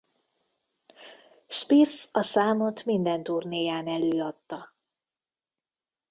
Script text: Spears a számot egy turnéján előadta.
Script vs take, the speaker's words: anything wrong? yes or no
yes